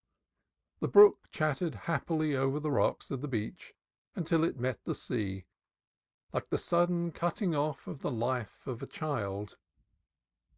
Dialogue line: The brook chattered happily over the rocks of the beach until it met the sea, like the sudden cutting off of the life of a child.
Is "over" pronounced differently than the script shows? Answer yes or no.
no